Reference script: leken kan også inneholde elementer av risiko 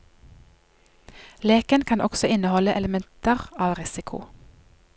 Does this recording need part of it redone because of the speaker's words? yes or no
no